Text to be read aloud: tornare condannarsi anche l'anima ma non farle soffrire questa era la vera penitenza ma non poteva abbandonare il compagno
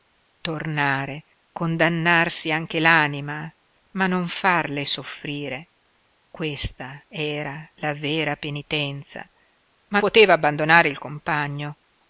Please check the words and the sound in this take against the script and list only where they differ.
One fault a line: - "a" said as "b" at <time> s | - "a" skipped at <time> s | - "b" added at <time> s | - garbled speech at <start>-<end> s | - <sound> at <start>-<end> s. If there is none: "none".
- "non" skipped at 10.0 s